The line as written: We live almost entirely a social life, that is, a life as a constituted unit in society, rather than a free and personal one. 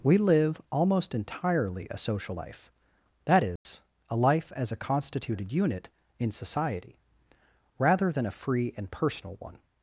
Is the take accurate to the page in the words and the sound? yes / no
no